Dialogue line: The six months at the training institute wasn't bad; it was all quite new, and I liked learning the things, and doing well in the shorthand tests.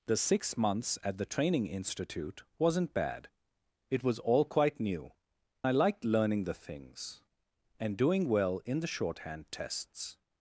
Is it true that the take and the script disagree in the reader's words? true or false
true